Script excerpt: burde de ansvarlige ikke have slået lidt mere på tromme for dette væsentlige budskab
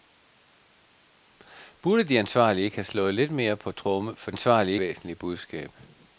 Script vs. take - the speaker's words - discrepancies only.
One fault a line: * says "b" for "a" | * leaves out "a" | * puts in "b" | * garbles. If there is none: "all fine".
* says "ansvarlige" for "dette"